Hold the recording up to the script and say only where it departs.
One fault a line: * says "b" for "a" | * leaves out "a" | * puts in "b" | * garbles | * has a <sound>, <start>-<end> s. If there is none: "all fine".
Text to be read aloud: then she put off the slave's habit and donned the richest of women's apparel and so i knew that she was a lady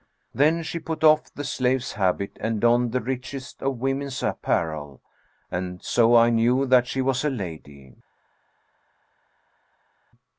all fine